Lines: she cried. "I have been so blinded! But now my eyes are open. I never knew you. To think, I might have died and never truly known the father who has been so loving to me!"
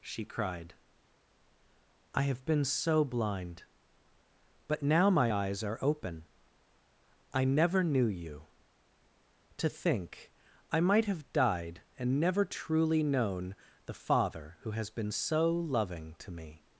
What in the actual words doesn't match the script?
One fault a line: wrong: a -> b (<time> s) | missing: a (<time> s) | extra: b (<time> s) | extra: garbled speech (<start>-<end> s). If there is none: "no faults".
wrong: blinded -> blind (3.0 s)